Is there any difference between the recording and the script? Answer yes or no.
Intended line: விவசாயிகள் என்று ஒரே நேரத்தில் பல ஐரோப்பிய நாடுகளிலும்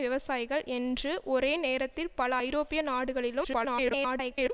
yes